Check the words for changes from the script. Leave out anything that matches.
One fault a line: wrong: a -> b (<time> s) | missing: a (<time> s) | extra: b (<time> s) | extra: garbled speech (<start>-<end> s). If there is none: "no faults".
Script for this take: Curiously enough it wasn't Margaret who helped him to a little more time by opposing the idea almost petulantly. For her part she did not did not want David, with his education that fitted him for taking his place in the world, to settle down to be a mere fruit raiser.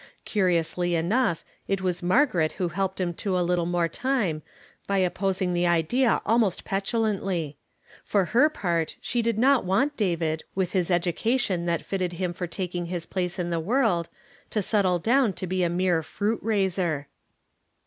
wrong: wasn't -> was (1.8 s)
missing: did not (9.6 s)